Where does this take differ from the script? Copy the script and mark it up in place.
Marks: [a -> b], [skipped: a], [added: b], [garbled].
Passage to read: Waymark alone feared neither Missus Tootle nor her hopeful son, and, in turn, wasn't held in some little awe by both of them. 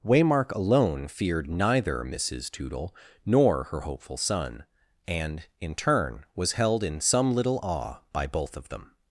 Waymark alone feared neither Missus Tootle nor her hopeful son, and, in turn, [wasn't -> was] held in some little awe by both of them.